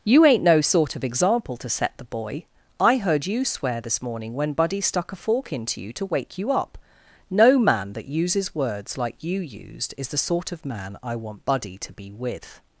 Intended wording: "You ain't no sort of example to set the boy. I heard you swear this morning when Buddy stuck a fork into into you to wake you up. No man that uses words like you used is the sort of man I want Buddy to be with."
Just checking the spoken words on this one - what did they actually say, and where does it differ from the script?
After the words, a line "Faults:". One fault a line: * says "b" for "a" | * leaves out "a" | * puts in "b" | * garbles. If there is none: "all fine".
"You ain't no sort of example to set the boy. I heard you swear this morning when Buddy stuck a fork into you to wake you up. No man that uses words like you used is the sort of man I want Buddy to be with."
Faults:
* leaves out "into"